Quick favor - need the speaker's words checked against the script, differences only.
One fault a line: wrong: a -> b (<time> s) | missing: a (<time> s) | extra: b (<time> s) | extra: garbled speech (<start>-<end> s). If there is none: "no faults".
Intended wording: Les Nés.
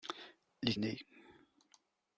no faults